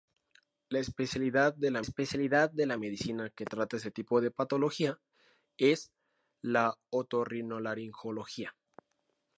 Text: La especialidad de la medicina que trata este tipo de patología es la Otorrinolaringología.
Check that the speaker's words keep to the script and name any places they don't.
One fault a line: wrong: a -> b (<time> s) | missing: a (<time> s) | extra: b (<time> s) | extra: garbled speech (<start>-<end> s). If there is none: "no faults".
extra: especialidad de la (1.8 s)